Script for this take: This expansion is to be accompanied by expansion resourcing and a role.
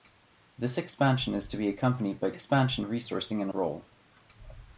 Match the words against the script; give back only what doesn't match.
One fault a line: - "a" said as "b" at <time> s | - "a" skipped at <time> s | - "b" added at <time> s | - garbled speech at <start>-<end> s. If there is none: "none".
none